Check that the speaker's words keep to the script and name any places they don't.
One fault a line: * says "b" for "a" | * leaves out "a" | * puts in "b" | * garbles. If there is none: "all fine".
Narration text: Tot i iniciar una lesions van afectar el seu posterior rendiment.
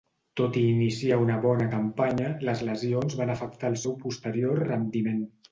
* puts in "bona campanya les"